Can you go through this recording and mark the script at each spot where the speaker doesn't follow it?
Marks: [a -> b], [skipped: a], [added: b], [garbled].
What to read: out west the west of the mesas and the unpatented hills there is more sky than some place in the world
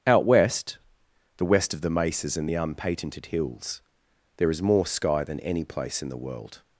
out west the west of the mesas and the unpatented hills there is more sky than [some -> any] place in the world